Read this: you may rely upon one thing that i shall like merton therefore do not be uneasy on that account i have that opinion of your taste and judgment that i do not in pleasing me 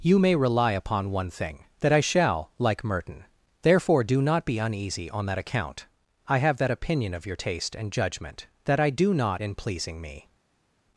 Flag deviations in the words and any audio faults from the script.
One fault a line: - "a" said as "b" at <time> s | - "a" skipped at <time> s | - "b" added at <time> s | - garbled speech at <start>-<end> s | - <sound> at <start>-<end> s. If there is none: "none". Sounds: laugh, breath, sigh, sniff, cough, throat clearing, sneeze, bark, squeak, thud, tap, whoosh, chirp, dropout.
none